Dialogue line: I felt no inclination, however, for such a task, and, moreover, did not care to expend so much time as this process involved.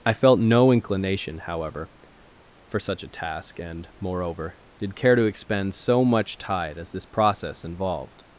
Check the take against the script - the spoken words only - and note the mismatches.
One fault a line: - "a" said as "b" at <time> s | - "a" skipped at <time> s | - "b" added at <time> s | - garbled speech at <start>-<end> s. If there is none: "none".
- "not" skipped at 5.0 s
- "time" said as "tide" at 6.4 s